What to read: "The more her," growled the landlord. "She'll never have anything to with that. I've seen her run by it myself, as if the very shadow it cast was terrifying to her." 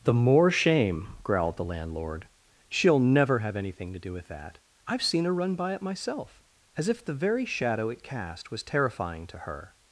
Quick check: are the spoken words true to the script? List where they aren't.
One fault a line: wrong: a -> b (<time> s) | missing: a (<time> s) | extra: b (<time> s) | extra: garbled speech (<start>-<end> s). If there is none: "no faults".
wrong: her -> shame (0.5 s)
extra: do (4.0 s)